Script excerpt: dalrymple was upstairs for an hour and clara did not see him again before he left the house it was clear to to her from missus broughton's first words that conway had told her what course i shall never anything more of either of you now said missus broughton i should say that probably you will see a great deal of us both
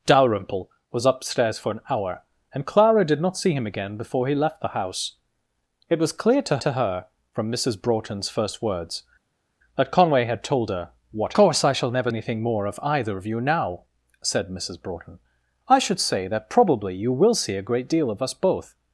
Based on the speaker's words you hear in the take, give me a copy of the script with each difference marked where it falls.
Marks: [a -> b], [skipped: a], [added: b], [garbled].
dalrymple was upstairs for an hour and clara did not see him again before he left the house it was clear to to her from missus broughton's first words that conway had told her what course i shall never anything more of either of you now said missus broughton i should say that probably you will see a great deal of us both